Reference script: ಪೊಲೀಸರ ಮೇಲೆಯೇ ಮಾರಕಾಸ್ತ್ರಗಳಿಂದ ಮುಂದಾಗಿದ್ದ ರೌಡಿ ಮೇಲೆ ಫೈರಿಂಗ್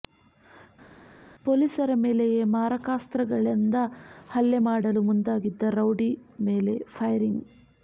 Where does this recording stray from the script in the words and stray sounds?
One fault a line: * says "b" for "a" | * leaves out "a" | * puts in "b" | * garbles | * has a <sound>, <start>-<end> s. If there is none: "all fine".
* puts in "ಹಲ್ಲೆ ಮಾಡಲು"